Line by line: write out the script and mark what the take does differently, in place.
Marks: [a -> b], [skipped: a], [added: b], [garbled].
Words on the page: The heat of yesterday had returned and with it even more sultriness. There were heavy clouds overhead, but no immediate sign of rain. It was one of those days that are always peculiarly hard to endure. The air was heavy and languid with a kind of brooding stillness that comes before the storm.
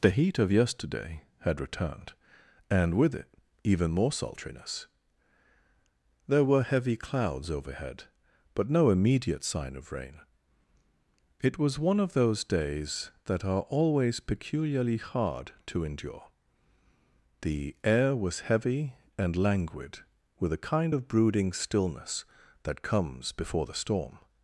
The heat of yesterday had returned and with it even more sultriness. There were heavy clouds overhead, but no immediate sign of rain. It was one of those days that are always peculiarly hard to endure. The air was heavy and languid with a kind of brooding stillness that comes before the storm.